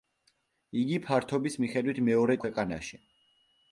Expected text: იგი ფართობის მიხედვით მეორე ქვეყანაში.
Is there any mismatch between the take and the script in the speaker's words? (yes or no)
no